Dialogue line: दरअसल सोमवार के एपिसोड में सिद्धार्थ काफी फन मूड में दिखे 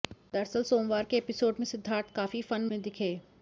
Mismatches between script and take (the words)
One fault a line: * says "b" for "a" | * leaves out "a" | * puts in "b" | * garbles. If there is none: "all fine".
* leaves out "मूड"